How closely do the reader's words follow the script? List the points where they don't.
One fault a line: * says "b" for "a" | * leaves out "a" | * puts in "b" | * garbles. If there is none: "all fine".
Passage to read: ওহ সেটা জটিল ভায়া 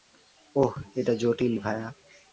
* says "এটা" for "সেটা"